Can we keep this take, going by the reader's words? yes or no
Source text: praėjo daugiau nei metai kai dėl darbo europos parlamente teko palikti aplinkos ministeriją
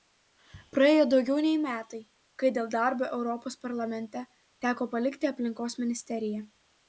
yes